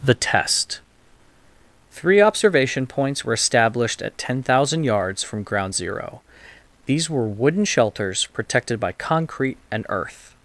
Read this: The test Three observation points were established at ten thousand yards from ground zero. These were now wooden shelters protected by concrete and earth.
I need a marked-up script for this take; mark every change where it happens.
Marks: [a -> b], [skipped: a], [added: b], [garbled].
The test Three observation points were established at ten thousand yards from ground zero. These were [skipped: now] wooden shelters protected by concrete and earth.